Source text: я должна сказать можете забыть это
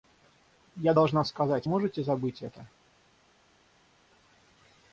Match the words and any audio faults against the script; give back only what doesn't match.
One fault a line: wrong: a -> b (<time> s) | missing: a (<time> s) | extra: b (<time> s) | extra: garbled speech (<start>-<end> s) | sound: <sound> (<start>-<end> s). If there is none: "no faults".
no faults